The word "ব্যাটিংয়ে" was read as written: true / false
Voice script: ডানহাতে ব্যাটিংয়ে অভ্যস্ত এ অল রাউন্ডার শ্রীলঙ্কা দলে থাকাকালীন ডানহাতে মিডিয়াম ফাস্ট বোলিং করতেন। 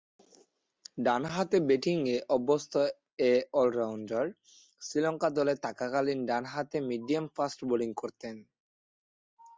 true